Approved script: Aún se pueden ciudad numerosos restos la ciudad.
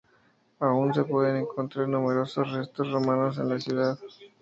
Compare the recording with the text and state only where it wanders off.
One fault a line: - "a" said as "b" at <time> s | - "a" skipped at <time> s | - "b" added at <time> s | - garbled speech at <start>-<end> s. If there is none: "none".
- "ciudad" said as "encontrar" at 1.4 s
- "romanos en" added at 2.9 s